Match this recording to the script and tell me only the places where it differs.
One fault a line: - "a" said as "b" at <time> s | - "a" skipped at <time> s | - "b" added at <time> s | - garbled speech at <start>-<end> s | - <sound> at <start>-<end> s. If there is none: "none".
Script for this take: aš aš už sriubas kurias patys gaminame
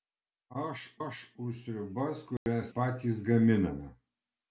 - dropout at 2.4-2.5 s